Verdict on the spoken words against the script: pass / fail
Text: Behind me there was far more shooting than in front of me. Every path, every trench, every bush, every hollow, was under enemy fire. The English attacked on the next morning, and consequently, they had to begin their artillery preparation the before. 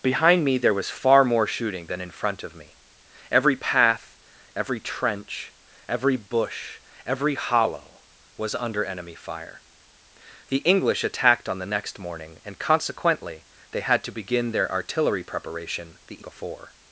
pass